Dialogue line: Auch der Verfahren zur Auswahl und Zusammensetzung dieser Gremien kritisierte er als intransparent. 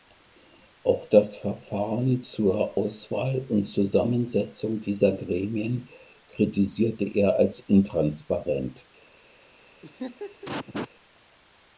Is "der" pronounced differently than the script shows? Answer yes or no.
yes